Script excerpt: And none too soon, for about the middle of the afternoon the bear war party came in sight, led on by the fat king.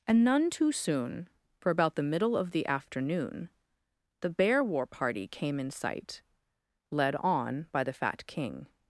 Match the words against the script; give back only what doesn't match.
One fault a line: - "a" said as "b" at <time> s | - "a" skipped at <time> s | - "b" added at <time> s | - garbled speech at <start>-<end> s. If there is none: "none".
none